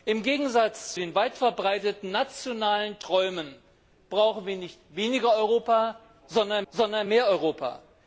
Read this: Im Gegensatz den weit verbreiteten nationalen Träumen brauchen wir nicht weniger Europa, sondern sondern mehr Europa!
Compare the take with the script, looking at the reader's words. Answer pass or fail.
pass